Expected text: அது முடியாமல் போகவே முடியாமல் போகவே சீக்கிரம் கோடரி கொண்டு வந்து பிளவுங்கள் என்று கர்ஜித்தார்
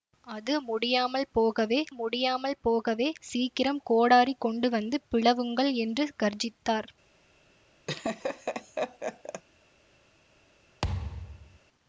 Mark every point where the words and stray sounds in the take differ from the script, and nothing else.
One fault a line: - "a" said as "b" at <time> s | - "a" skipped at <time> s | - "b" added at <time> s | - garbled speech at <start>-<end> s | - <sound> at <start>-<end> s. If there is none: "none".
- laugh at 7.9-9.4 s
- thud at 10.8-11.6 s